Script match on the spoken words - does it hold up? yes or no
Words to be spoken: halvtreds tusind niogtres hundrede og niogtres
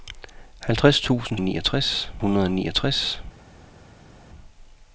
yes